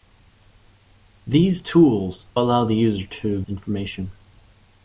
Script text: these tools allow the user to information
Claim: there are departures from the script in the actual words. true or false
false